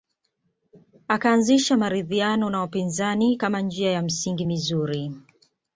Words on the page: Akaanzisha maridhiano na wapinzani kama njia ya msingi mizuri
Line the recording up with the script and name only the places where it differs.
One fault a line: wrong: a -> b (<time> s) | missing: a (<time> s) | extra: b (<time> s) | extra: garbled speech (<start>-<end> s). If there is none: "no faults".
no faults